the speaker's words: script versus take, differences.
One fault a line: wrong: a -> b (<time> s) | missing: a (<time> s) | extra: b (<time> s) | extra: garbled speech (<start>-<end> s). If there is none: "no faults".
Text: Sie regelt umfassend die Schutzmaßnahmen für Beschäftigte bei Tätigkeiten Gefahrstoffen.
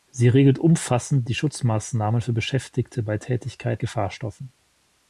no faults